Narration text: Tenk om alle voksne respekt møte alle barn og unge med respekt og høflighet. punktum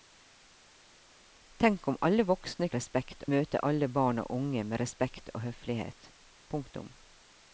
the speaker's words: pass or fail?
pass